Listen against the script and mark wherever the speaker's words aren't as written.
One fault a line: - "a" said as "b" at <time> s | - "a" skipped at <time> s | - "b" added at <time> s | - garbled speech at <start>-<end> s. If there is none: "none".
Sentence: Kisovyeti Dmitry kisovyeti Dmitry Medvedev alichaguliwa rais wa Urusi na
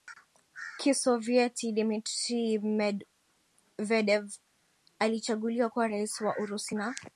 - "kisovyeti Dmitry" skipped at 2.6 s
- "kuwa" added at 5.7 s